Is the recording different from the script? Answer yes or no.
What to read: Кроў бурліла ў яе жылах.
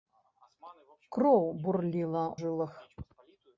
yes